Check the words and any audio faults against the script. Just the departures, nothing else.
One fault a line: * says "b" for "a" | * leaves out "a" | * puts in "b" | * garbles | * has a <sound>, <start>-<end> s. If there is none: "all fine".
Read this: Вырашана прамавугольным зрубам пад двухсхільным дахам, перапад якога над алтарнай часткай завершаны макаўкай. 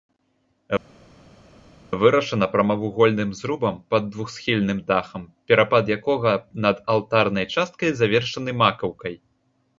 all fine